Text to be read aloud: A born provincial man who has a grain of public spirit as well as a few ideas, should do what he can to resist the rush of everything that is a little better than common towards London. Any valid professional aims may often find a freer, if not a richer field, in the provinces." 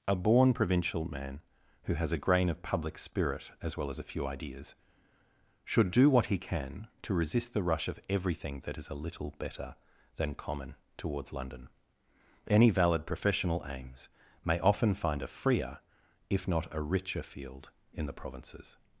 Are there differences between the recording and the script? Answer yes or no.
no